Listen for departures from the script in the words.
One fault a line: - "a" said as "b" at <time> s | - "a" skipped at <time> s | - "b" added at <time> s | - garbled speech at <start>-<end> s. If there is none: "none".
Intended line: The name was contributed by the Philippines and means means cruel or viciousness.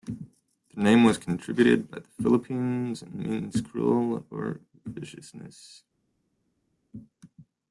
- "means" skipped at 3.6 s